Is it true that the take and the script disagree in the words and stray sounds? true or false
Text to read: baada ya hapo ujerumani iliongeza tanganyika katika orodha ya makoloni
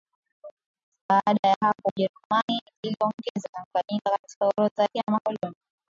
false